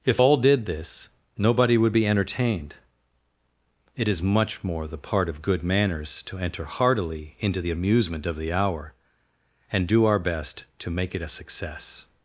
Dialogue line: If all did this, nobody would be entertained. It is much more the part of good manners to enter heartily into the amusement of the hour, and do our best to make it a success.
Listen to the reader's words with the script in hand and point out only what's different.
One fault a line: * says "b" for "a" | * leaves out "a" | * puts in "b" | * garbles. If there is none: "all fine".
all fine